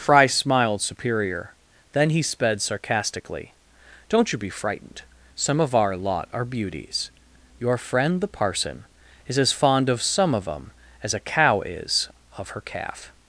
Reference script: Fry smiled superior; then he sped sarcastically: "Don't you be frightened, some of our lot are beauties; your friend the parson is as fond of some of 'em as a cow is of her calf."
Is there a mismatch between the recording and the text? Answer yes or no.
no